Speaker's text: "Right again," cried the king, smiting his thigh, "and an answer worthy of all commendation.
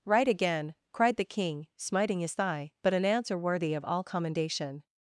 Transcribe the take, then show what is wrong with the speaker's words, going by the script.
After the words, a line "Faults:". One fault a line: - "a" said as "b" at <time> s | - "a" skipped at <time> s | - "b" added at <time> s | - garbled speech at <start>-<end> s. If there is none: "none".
"Right again," cried the king, smiting his thigh, "but an answer worthy of all commendation.
Faults:
- "and" said as "but" at 2.8 s